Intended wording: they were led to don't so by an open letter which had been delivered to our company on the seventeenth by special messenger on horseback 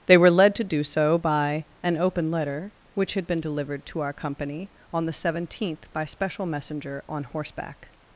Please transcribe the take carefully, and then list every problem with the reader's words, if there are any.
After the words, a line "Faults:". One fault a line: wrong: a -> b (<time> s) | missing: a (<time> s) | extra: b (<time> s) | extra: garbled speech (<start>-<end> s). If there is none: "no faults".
they were led to do so by an open letter which had been delivered to our company on the seventeenth by special messenger on horseback
Faults:
wrong: don't -> do (0.6 s)